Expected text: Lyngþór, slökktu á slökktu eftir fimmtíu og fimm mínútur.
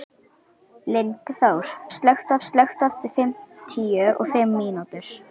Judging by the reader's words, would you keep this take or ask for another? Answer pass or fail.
pass